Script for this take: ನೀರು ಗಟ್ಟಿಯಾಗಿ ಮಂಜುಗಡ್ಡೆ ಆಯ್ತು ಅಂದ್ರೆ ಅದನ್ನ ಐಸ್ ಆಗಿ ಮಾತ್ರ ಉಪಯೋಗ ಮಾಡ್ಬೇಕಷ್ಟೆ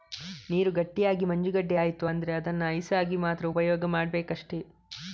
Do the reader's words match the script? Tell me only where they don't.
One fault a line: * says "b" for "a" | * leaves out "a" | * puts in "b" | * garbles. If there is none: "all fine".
all fine